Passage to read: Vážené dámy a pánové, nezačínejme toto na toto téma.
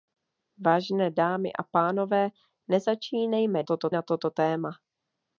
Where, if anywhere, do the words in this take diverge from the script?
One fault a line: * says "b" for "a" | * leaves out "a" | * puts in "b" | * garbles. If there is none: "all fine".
all fine